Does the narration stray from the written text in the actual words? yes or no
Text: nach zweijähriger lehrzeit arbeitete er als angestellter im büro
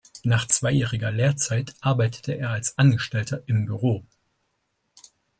no